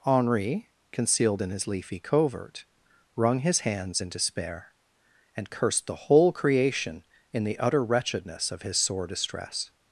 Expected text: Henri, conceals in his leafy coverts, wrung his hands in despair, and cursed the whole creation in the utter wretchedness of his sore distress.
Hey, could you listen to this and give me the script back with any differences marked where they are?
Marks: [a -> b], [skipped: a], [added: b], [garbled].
Henri, [conceals -> concealed] in his leafy [coverts, -> covert] wrung his hands in despair, and cursed the whole creation in the utter wretchedness of his sore distress.